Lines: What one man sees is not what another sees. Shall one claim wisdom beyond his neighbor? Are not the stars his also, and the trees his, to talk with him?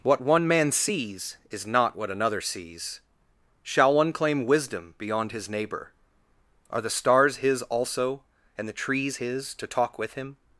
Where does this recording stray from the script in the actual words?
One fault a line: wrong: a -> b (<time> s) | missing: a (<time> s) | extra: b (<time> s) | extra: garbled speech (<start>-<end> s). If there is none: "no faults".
missing: not (6.8 s)